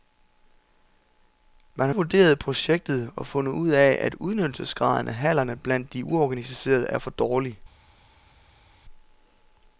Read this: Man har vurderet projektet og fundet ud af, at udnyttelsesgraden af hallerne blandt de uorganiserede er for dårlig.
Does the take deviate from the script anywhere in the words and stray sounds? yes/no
no